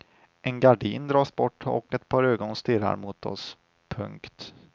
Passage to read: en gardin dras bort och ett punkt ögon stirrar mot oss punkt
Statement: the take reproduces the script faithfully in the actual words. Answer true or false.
false